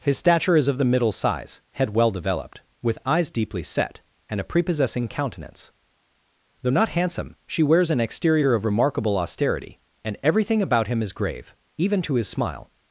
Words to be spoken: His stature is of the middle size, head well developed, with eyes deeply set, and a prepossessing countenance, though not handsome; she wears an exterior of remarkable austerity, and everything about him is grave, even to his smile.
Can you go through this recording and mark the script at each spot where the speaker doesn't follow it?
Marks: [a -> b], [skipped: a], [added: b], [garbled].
His stature is of the middle size, head well developed, with eyes deeply set, and a prepossessing countenance, though not handsome; she wears an exterior of remarkable austerity, and everything about him is grave, even to his smile.